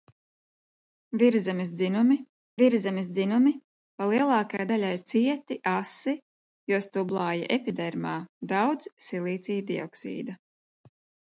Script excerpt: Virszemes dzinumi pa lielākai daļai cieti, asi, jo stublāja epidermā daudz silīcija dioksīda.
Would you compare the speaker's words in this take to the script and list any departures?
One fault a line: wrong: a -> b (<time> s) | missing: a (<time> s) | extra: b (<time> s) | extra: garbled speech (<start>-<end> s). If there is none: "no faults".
extra: virszemes dzinumi (2.6 s)